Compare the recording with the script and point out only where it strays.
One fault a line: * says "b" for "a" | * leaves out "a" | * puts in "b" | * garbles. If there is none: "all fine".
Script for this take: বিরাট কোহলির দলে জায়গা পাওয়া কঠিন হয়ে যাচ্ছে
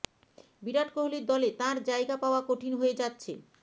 * puts in "তাঁর"